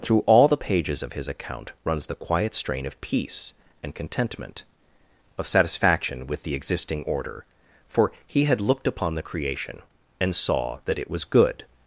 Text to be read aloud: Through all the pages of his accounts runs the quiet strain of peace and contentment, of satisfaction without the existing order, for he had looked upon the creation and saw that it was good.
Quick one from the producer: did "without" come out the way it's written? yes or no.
no